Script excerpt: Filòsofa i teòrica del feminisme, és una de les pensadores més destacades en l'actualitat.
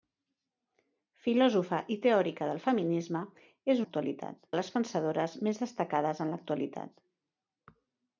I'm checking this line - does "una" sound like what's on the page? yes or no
no